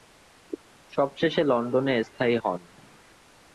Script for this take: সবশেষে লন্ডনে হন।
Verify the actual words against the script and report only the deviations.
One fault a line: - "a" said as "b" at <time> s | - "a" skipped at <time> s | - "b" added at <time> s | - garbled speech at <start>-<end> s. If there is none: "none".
- "স্থায়ী" added at 2.0 s